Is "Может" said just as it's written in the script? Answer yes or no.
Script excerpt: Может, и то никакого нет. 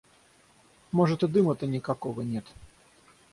yes